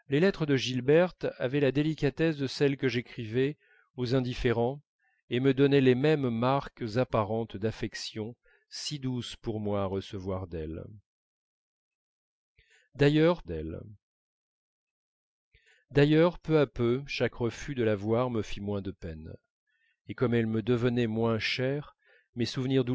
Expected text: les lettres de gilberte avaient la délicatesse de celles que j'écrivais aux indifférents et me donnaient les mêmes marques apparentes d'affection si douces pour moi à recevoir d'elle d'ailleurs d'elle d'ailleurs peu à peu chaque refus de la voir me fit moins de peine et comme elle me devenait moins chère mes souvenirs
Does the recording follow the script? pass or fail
pass